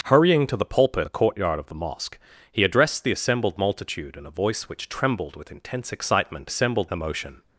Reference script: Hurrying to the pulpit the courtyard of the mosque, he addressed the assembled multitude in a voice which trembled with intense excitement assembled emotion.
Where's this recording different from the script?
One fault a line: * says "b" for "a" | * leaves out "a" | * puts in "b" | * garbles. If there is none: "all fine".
all fine